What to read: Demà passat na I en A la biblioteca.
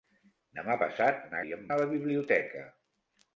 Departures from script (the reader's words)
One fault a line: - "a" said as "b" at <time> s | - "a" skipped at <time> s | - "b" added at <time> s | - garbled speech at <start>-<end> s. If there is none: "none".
none